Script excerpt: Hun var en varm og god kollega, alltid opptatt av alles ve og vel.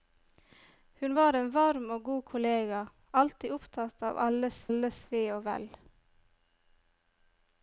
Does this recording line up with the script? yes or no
no